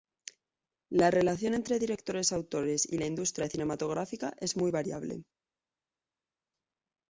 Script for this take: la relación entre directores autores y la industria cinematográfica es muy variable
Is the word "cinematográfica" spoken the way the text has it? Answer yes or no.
yes